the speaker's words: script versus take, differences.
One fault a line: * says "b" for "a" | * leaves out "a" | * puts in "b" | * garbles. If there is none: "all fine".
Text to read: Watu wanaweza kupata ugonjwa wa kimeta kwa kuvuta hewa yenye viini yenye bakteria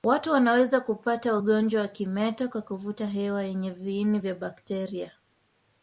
* says "vya" for "yenye"